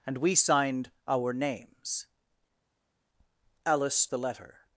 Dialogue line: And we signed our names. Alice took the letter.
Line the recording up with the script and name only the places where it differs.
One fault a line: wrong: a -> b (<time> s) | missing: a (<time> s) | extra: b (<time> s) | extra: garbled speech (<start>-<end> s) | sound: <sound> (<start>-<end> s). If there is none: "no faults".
missing: took (4.1 s)